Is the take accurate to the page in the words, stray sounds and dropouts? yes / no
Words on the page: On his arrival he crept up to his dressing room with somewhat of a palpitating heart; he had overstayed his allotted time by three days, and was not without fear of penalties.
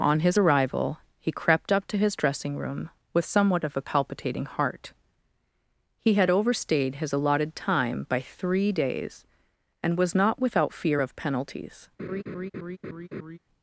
no